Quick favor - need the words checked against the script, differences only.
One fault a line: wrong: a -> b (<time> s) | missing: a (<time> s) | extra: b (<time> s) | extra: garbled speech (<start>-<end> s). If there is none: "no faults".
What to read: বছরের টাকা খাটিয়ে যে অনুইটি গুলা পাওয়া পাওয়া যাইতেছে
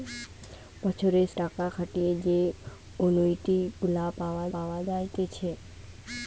no faults